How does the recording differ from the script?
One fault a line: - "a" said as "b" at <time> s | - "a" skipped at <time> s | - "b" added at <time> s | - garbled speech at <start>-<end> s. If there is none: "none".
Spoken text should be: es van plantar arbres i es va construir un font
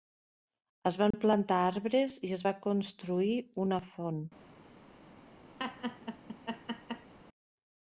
- "un" said as "una" at 3.7 s